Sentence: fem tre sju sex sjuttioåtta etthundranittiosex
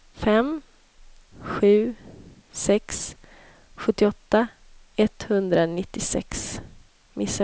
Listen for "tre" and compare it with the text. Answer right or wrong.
wrong